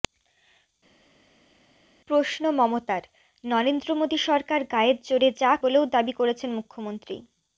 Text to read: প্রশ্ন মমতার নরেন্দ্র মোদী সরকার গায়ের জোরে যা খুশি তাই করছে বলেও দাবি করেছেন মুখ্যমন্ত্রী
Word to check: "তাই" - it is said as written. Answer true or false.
false